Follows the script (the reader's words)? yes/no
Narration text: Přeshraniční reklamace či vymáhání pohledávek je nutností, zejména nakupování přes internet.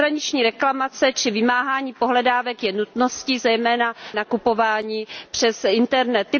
yes